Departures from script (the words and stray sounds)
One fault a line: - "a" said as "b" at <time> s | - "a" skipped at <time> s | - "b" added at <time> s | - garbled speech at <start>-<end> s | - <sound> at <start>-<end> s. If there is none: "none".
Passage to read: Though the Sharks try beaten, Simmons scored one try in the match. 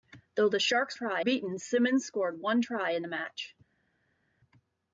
none